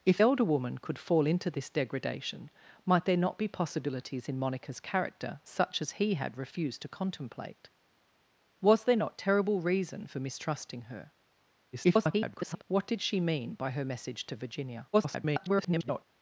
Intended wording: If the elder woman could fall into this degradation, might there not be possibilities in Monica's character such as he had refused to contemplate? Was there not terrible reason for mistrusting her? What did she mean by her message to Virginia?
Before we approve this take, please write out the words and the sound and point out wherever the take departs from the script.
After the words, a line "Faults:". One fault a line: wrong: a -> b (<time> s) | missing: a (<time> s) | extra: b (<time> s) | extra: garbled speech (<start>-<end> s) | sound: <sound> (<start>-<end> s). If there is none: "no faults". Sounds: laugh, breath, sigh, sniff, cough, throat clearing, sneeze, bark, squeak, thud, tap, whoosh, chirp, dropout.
If elder woman could fall into this degradation, might there not be possibilities in Monica's character such as he had refused to contemplate? Was there not terrible reason for mistrusting her? [garbled] What did she mean by her message to Virginia? [garbled]
Faults:
missing: the (0.2 s)
extra: garbled speech (11.7-12.6 s)
extra: garbled speech (14.9-16.1 s)